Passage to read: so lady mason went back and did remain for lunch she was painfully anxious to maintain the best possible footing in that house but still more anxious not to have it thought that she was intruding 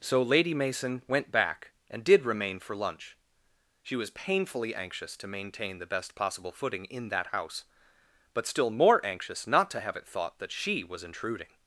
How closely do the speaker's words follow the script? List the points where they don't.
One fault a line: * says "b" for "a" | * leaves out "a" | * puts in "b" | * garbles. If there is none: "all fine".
all fine